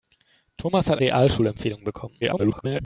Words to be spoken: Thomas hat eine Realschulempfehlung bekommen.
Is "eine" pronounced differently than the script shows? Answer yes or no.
yes